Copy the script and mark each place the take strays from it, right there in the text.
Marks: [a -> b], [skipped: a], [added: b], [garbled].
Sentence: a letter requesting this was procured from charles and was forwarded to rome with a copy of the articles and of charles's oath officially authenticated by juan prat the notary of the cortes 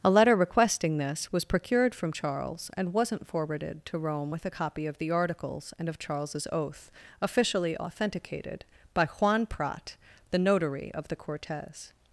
a letter requesting this was procured from charles and [was -> wasn't] forwarded to rome with a copy of the articles and of charles's oath officially authenticated by juan prat the notary of the cortes